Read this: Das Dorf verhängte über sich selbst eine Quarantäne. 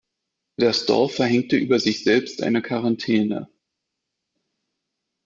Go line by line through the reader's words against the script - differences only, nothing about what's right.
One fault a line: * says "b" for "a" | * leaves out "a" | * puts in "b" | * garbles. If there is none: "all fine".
all fine